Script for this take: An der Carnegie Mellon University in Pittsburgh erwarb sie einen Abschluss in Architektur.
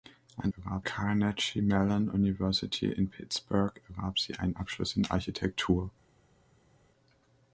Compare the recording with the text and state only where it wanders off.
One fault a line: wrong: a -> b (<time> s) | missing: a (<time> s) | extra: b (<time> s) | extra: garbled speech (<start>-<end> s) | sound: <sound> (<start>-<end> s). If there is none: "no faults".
wrong: der -> erwarb (0.5 s)